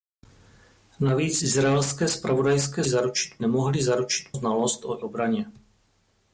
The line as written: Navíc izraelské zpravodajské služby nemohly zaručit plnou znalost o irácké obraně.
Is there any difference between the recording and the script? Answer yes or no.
yes